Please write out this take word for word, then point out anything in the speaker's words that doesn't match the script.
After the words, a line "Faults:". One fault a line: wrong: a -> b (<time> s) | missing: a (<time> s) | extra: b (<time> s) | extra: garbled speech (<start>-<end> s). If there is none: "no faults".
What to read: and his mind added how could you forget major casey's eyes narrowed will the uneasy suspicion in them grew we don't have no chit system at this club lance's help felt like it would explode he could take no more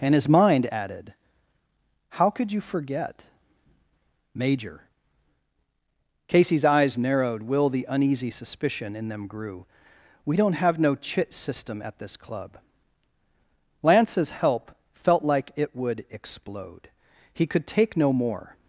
and his mind added how could you forget major casey's eyes narrowed will the uneasy suspicion in them grew we don't have no chit system at this club lance's help felt like it would explode he could take no more
Faults:
no faults